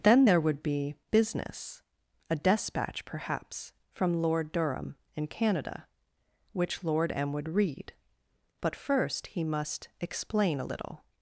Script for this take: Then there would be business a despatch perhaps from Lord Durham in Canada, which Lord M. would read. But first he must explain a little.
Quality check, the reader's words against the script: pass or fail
pass